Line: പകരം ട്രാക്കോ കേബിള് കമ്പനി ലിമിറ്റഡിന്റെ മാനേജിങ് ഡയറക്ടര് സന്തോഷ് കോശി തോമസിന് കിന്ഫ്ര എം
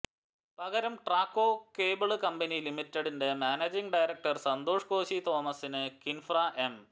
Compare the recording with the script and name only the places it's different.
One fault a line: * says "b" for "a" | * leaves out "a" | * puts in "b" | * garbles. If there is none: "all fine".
all fine